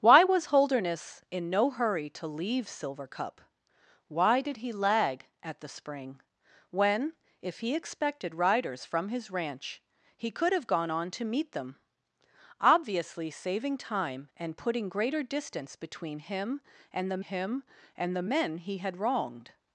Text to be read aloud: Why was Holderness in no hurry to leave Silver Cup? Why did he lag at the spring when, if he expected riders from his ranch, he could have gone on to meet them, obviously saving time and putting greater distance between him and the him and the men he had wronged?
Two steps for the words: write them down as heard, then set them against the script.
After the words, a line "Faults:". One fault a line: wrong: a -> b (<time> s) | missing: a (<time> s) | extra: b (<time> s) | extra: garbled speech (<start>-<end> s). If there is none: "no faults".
Why was Holderness in no hurry to leave Silver Cup? Why did he lag at the spring when, if he expected riders from his ranch, he could have gone on to meet them, obviously saving time and putting greater distance between him and the him and the men he had wronged?
Faults:
no faults